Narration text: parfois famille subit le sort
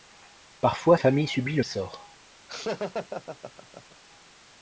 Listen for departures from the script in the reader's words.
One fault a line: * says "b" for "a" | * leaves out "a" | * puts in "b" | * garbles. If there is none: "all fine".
all fine